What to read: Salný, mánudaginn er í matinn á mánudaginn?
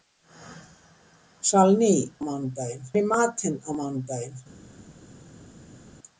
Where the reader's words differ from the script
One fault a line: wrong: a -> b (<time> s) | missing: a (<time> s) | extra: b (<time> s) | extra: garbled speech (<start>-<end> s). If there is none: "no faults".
no faults